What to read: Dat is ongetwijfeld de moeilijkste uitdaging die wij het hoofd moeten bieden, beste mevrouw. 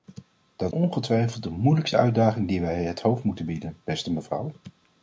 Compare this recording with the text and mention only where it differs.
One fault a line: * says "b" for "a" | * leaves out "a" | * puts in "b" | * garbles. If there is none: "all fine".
* leaves out "is"